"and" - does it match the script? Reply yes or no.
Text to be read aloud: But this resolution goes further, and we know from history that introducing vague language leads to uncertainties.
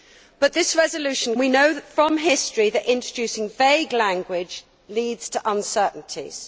no